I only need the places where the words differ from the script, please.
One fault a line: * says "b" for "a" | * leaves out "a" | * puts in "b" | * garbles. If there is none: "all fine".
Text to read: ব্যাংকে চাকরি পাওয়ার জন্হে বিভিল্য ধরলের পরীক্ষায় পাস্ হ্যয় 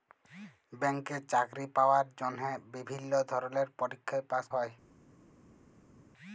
all fine